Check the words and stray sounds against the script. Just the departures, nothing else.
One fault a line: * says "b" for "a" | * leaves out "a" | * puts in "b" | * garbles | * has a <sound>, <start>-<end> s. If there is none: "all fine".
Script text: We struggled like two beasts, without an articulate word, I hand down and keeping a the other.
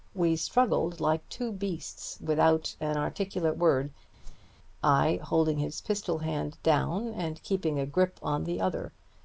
* has a whoosh, 4.2-4.5 s
* puts in "holding his pistol"
* puts in "grip on"